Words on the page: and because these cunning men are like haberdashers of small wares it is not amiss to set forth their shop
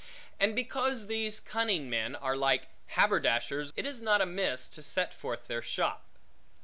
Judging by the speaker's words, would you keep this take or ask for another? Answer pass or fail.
fail